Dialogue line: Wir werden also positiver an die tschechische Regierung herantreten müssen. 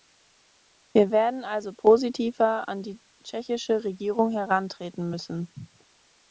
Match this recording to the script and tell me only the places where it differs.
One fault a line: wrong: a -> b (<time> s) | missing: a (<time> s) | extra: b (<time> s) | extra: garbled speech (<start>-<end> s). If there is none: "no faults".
no faults